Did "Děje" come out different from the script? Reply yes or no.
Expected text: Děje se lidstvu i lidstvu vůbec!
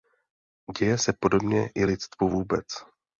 no